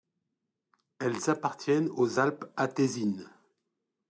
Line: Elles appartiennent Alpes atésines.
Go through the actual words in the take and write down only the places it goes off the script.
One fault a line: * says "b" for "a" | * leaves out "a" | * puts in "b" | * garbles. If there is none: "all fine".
* puts in "aux"